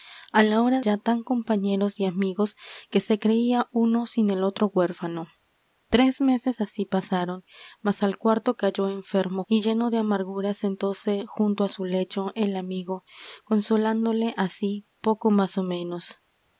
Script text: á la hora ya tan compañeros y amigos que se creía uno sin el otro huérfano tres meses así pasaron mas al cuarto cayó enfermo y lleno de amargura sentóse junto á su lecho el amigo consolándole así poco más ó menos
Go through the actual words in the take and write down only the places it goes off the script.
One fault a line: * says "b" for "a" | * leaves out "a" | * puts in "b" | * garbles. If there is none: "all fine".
all fine